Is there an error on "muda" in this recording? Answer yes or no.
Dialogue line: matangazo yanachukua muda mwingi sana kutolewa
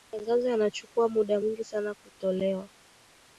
no